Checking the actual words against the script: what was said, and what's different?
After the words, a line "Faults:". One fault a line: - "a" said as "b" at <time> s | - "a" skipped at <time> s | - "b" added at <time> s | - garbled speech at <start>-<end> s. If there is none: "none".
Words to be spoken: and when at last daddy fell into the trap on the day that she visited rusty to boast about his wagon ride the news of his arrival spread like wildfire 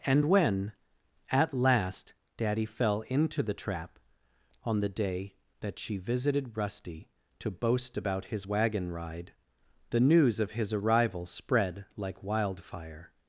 and when at last daddy fell into the trap on the day that she visited rusty to boast about his wagon ride the news of his arrival spread like wildfire
Faults:
none